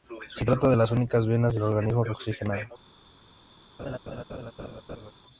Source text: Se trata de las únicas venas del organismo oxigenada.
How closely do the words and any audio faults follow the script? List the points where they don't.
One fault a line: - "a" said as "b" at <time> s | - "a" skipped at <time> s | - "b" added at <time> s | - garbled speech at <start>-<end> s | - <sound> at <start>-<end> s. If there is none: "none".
- laugh at 3.8-5.1 s